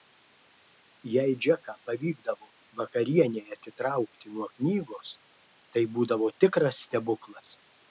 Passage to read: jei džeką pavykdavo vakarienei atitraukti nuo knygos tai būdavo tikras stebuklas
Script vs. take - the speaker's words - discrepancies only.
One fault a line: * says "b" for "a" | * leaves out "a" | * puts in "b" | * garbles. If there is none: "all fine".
all fine